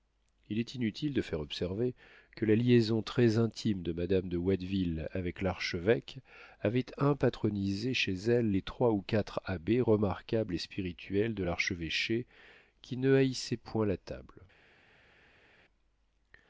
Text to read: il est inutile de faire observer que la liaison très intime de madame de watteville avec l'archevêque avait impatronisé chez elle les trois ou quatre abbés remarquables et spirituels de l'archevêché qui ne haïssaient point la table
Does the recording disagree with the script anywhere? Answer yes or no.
no